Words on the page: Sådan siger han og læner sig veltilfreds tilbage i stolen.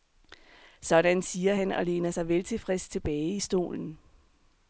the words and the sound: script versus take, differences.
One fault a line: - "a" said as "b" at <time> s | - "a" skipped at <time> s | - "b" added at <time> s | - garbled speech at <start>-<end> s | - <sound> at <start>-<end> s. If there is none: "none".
none